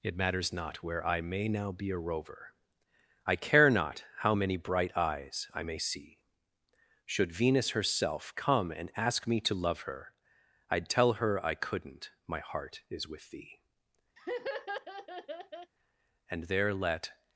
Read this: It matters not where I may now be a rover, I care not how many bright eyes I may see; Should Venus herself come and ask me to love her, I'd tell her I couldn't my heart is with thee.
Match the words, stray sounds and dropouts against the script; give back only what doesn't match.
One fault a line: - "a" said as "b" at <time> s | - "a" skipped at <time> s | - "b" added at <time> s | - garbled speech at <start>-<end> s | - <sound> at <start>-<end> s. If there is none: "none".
- laugh at 14.2-15.7 s
- "And there let" added at 16.3 s